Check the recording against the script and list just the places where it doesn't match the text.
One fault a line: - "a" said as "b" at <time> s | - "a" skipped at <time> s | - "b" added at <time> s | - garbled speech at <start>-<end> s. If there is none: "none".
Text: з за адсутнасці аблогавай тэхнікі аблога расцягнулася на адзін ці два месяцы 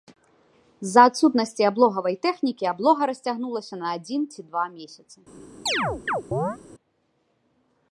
none